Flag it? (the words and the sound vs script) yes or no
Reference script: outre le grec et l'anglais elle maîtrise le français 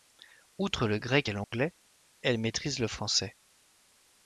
yes